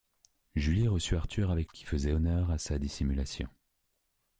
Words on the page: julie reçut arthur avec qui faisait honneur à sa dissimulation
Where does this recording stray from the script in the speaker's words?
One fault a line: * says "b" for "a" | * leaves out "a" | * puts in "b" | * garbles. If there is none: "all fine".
all fine